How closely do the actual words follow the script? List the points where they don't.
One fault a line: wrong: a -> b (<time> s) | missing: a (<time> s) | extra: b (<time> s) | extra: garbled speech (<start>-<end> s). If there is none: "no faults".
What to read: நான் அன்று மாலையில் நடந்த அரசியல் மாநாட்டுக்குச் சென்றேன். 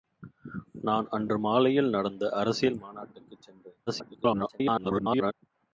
extra: garbled speech (3.9-5.3 s)